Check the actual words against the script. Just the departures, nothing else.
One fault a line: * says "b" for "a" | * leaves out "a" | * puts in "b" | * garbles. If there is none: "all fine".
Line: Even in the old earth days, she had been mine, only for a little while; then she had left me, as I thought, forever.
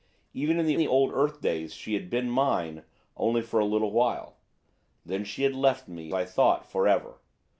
* puts in "the"
* leaves out "as"